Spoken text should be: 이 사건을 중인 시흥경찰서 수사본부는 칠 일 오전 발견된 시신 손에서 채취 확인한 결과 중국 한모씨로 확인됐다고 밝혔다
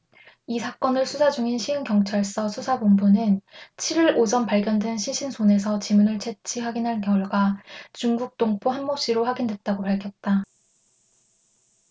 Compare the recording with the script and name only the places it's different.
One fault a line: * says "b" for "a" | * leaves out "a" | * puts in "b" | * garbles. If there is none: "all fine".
* puts in "수사"
* puts in "지문을"
* puts in "동포"